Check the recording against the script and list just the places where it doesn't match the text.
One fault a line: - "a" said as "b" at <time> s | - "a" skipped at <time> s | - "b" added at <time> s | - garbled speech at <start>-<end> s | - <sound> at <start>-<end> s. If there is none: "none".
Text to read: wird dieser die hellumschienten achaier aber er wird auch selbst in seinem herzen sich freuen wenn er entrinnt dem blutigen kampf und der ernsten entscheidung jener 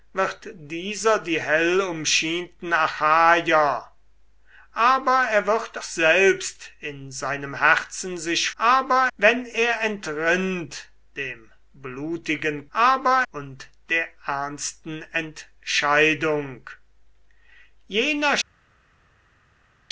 - "auch" skipped at 5.8 s
- "freuen" said as "aber" at 8.6 s
- "kampf" said as "aber" at 12.7 s